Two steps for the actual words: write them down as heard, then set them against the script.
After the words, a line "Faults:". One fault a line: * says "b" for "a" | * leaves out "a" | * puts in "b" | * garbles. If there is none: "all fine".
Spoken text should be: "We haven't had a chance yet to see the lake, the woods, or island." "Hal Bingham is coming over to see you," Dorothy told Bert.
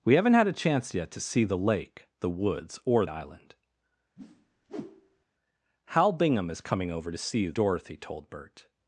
"We haven't had a chance yet to see the lake, the woods, or island." "Hal Bingham is coming over to see you," Dorothy told Bert.
Faults:
all fine